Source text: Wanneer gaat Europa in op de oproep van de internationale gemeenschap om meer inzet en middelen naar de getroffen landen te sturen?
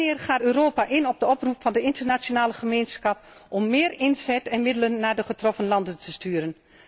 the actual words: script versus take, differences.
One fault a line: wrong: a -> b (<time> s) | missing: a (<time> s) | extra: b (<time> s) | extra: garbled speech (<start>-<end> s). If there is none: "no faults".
no faults